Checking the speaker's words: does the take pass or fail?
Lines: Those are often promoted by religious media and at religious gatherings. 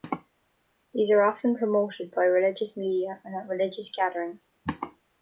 fail